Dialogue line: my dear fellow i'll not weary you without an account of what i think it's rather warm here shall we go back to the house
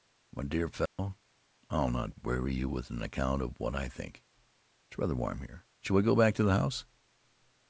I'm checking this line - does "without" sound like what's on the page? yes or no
no